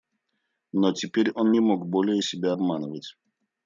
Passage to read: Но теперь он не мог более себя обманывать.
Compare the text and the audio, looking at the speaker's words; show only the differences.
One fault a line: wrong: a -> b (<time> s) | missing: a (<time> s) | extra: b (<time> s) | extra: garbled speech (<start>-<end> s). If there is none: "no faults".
no faults